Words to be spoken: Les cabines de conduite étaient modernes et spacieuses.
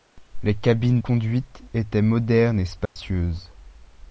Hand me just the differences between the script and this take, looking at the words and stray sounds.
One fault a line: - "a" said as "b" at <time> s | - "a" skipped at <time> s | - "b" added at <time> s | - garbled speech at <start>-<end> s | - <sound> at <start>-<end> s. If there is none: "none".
- "de" skipped at 1.0 s
- dropout at 2.9-3.0 s